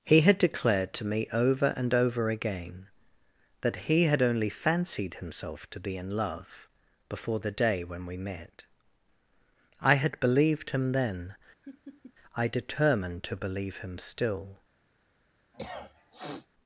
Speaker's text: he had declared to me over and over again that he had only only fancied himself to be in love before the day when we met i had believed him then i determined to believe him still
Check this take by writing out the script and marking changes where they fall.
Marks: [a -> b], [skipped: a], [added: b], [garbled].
he had declared to me over and over again that he had only [skipped: only] fancied himself to be in love before the day when we met i had believed him then i determined to believe him still